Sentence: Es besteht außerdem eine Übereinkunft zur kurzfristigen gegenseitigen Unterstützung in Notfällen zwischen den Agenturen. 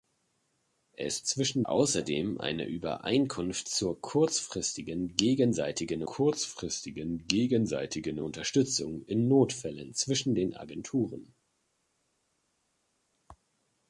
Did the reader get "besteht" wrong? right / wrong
wrong